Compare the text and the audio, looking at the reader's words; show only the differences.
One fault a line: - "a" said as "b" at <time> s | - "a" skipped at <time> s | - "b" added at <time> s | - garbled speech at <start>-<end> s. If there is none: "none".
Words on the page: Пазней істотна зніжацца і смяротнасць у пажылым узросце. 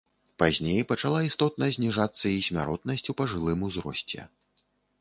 - "пачала" added at 0.9 s